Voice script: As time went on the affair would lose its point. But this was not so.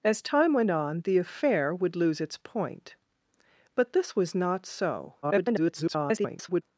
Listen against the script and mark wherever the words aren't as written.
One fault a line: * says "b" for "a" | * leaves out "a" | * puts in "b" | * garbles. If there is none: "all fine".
* garbles